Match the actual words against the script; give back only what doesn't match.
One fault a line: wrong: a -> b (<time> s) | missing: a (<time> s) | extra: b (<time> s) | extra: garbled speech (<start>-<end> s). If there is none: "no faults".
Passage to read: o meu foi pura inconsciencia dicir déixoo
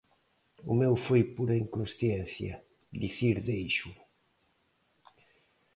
no faults